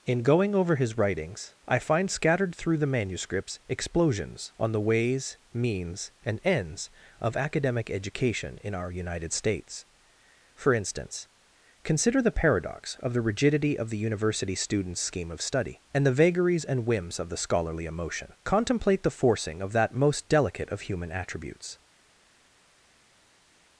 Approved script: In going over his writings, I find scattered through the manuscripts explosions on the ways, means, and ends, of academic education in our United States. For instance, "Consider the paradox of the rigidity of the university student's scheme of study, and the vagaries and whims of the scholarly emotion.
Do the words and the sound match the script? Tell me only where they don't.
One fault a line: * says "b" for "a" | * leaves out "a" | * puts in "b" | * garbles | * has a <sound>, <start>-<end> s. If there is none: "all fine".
* puts in "Contemplate the forcing of that most delicate of human attributes"